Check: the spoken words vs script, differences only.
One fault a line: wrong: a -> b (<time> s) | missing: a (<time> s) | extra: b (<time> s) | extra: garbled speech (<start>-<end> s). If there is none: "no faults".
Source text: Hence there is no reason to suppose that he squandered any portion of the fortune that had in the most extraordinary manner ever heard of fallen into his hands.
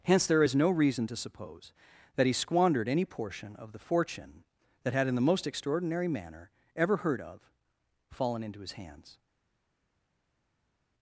no faults